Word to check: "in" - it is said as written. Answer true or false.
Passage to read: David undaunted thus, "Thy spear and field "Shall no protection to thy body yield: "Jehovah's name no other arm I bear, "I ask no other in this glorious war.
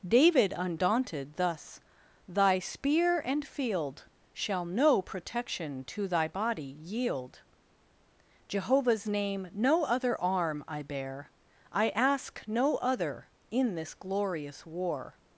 true